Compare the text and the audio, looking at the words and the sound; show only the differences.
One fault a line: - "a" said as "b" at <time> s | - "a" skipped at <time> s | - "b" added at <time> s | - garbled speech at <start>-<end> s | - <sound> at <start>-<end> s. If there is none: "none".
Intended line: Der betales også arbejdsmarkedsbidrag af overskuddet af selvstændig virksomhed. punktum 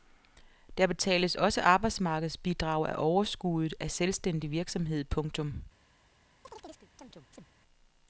- chirp at 6.4-7.5 s